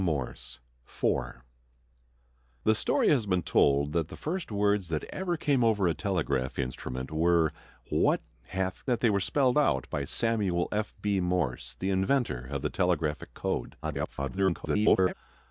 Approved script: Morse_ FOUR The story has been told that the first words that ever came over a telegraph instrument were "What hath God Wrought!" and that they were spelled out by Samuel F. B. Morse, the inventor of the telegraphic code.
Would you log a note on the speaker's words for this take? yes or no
yes